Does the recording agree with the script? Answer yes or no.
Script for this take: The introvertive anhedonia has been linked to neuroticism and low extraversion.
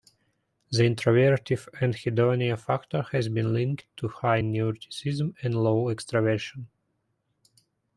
no